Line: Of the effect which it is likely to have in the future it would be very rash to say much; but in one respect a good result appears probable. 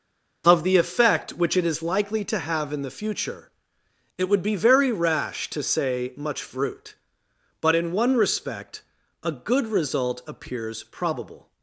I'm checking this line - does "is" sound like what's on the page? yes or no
yes